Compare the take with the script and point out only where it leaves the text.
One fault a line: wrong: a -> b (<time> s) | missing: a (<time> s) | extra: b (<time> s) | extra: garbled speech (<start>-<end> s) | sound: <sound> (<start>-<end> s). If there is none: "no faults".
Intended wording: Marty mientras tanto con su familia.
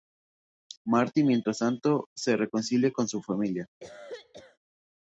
extra: se reconcilia (2.1 s)
sound: cough (3.8-4.6 s)